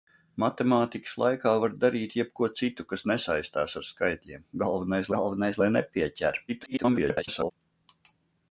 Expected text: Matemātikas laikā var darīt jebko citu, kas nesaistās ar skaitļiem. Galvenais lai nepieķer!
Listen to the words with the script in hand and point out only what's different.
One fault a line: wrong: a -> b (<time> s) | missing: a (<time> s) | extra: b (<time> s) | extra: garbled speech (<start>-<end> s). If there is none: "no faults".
extra: galvenais (5.2 s)
extra: garbled speech (6.5-7.5 s)